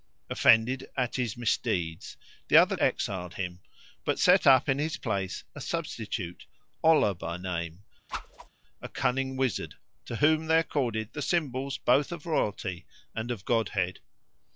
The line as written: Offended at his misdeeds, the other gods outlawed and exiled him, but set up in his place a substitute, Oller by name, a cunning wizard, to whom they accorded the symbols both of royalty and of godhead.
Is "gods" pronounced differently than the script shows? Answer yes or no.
yes